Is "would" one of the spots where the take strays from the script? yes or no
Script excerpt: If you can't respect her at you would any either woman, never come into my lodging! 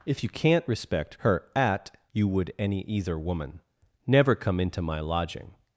no